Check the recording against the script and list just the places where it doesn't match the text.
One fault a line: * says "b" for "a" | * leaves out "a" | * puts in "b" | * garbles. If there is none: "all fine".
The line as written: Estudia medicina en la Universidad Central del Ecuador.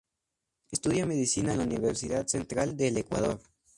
all fine